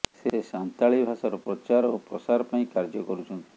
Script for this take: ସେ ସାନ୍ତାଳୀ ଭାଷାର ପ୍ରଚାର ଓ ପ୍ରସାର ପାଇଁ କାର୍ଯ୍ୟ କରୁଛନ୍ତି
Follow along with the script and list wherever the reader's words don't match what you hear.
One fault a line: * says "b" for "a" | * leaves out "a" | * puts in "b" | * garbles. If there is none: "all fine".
all fine